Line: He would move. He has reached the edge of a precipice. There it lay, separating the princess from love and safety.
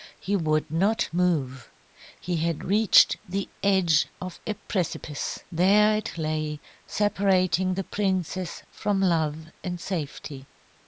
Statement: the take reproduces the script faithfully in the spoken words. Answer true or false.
false